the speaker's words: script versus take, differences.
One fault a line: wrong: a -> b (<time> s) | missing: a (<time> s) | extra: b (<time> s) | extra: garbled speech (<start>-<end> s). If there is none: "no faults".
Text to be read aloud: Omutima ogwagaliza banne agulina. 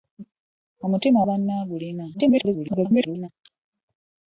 missing: ogwagaliza (1.2 s)
extra: garbled speech (2.1-3.3 s)